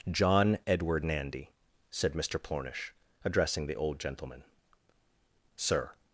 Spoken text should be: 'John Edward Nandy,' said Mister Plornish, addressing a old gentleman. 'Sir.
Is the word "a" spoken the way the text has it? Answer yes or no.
no